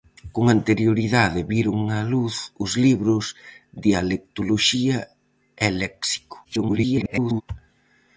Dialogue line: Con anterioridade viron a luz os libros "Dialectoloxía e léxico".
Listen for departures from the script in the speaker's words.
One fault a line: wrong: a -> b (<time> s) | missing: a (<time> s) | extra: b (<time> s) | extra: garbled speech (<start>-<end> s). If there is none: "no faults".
extra: garbled speech (6.4-7.4 s)